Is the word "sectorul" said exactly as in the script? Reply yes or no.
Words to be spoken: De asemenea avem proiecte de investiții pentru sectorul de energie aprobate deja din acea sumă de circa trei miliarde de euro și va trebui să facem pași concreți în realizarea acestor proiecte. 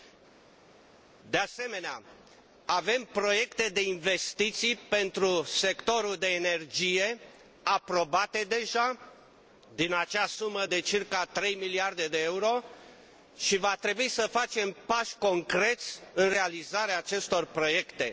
yes